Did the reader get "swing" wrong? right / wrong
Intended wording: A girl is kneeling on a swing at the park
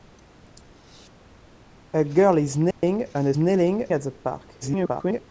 wrong